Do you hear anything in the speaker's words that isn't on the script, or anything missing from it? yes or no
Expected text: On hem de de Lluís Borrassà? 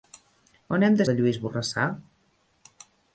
no